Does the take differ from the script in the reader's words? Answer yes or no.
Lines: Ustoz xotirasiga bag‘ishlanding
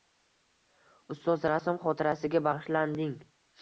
yes